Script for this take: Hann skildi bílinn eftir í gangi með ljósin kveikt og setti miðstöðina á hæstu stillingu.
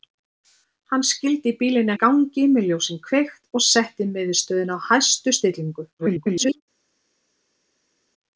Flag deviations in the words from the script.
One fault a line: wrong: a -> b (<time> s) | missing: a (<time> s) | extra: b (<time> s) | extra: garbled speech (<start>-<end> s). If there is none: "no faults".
missing: eftir (1.9 s)
extra: garbled speech (6.0-6.6 s)